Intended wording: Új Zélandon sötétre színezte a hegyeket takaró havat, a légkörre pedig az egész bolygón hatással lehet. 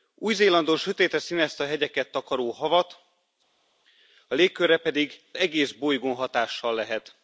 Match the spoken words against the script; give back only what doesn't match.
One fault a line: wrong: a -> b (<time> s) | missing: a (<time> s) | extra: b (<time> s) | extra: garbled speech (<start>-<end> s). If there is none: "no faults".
missing: az (5.2 s)